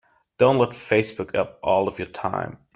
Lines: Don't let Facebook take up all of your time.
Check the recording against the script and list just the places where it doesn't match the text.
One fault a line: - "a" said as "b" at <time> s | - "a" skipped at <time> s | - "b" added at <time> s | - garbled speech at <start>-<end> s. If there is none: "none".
- "take" skipped at 1.4 s